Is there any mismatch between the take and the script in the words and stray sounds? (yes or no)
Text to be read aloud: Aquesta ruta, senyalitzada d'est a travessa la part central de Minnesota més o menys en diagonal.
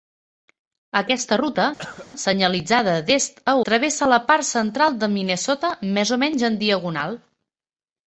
yes